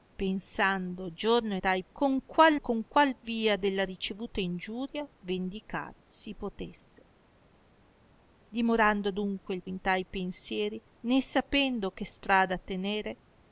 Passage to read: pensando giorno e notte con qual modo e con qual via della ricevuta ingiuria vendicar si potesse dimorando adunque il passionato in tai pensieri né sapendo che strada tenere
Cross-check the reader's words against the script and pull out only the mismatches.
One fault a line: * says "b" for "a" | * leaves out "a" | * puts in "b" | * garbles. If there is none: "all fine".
* says "tai" for "notte"
* leaves out "modo"
* leaves out "passionato"